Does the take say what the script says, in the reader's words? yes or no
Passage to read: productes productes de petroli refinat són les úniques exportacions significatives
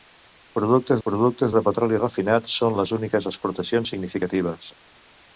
yes